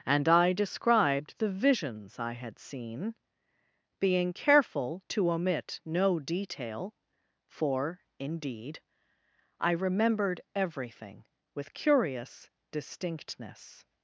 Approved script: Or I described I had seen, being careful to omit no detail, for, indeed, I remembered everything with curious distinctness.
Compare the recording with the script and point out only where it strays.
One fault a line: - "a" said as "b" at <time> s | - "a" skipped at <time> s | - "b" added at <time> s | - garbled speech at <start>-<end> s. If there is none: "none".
- "Or" said as "And" at 0.1 s
- "the visions" added at 1.4 s